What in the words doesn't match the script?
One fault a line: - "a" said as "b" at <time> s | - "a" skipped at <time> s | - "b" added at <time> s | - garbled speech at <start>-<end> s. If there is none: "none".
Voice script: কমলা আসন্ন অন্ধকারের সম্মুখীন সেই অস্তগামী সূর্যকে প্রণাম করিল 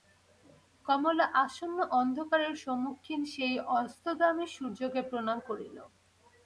none